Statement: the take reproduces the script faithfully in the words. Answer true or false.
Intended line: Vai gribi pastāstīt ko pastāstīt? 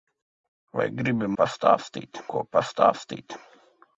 true